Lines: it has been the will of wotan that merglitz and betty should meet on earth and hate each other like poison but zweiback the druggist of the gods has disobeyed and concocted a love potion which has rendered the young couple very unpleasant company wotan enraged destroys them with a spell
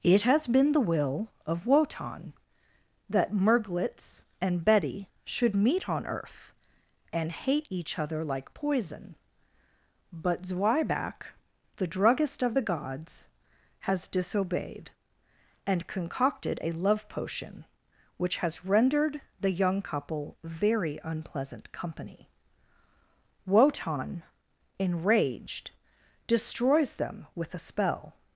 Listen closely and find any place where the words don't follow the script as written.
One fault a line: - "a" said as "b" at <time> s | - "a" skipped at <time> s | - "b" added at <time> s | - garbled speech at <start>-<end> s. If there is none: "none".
none